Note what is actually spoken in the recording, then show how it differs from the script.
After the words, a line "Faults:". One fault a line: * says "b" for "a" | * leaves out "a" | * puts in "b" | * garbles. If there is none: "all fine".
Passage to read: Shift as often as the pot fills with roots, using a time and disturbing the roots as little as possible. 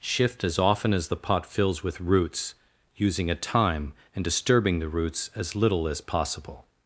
Shift as often as the pot fills with roots, using a time and disturbing the roots as little as possible.
Faults:
all fine